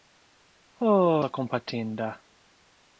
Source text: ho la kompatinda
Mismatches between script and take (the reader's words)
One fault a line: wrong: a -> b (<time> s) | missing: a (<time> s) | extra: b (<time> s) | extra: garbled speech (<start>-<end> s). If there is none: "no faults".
no faults